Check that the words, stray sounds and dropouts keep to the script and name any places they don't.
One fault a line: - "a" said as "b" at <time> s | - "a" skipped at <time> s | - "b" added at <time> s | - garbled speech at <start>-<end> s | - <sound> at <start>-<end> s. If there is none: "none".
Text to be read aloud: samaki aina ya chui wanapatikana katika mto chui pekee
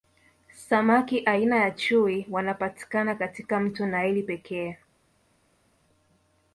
- "chui" said as "naili" at 3.9 s